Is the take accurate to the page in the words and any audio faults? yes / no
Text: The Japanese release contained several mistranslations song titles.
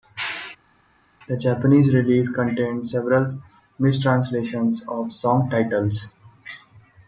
no